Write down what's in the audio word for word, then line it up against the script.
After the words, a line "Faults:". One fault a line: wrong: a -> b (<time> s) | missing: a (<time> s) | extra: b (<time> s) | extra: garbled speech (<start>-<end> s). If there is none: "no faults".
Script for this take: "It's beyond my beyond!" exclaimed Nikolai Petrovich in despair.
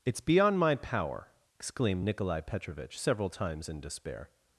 "It's beyond my power!" exclaimed Nikolai Petrovich several times in despair.
Faults:
wrong: beyond -> power (0.8 s)
extra: several times (3.0 s)